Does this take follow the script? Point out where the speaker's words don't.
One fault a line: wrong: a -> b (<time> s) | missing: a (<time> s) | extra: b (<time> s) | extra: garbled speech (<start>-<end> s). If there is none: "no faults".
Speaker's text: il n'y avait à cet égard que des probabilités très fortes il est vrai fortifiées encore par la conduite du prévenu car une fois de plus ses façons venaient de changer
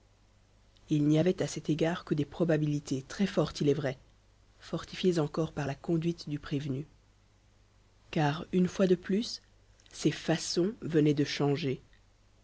no faults